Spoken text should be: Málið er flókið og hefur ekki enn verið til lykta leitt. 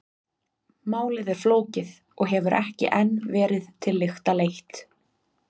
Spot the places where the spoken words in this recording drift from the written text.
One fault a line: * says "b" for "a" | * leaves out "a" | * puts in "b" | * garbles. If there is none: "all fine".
all fine